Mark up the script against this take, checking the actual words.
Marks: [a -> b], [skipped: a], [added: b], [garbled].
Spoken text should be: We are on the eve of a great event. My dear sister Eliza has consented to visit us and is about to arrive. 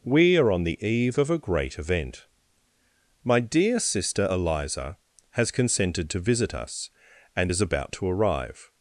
We are on the eve of a great event. My dear sister Eliza has consented to visit us and is about to arrive.